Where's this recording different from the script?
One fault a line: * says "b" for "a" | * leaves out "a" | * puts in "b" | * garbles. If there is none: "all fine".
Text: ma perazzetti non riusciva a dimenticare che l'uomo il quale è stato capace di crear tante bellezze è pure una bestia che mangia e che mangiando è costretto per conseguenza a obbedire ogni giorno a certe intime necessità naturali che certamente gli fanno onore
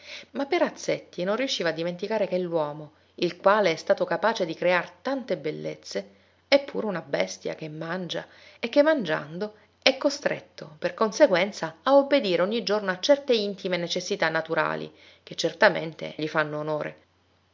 all fine